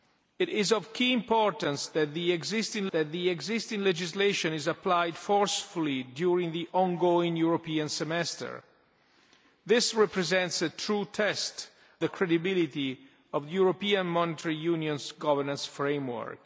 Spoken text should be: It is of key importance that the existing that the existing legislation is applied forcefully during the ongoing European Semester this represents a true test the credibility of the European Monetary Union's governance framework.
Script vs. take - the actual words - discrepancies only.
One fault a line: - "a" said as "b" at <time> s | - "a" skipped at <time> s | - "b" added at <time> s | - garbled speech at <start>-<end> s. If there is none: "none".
none